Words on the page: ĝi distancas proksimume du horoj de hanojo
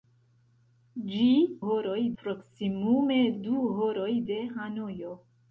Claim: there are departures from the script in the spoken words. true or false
true